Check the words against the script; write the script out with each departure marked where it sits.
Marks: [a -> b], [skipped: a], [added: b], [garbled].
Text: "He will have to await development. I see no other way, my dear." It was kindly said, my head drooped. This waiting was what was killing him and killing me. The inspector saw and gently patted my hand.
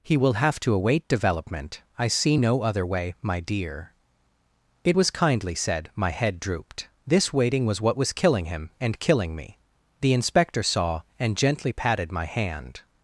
"He will have to await development. I see no other way, my dear." It was kindly said, my head drooped. This waiting was what was killing him and killing me. The inspector saw and gently patted my hand.